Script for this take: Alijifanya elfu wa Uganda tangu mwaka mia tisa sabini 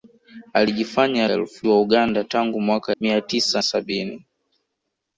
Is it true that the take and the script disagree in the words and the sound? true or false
false